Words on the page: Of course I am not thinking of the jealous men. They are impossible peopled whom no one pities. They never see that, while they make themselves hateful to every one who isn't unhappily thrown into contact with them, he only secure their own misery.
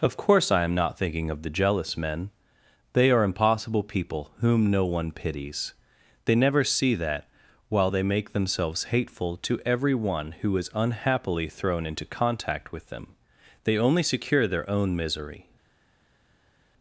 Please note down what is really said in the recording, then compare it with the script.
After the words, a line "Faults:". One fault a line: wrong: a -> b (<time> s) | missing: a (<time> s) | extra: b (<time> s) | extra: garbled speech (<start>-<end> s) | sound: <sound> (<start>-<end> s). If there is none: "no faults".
Of course I am not thinking of the jealous men. They are impossible people whom no one pities. They never see that, while they make themselves hateful to every one who is unhappily thrown into contact with them, they only secure their own misery.
Faults:
wrong: peopled -> people (3.8 s)
wrong: isn't -> is (10.6 s)
wrong: he -> they (13.6 s)